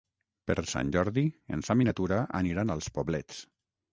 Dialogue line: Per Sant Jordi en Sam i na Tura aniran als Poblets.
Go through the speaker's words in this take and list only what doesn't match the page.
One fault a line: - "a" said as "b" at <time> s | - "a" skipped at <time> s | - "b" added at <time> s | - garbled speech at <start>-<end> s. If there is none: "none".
none